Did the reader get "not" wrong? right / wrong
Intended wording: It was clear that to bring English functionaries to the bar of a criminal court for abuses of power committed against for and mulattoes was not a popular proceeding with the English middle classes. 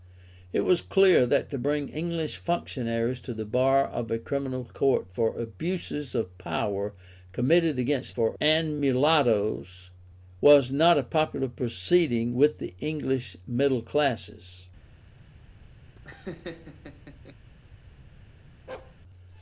right